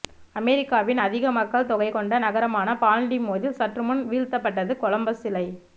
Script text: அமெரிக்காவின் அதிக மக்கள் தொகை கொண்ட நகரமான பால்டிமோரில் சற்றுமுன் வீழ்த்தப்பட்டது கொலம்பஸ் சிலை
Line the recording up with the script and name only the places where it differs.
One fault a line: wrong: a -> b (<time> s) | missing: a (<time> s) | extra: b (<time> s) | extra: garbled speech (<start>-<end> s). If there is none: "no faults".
no faults